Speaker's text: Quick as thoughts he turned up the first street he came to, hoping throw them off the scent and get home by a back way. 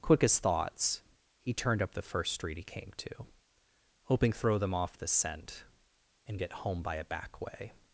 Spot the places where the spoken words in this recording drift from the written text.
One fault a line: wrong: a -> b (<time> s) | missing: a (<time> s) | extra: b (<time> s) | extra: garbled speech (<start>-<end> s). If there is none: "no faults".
no faults